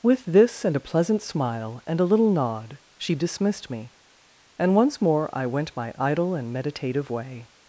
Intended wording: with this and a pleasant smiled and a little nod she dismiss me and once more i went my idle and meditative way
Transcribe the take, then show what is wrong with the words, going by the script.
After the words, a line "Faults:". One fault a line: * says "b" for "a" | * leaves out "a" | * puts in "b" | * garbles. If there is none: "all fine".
with this and a pleasant smile and a little nod she dismissed me and once more i went my idle and meditative way
Faults:
* says "smile" for "smiled"
* says "dismissed" for "dismiss"